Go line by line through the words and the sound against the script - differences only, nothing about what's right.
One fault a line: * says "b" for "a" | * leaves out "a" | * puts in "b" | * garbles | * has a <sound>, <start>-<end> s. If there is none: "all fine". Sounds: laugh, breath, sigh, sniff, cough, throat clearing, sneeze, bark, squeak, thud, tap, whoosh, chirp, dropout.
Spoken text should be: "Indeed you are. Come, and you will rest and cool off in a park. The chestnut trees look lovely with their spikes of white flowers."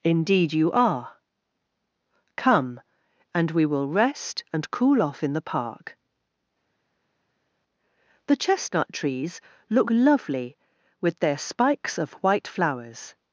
* says "we" for "you"
* says "the" for "a"